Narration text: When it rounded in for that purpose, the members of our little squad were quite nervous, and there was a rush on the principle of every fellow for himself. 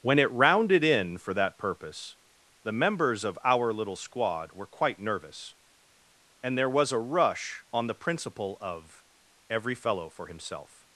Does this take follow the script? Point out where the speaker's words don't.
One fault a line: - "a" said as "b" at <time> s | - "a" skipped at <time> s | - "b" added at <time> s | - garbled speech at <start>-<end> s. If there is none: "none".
none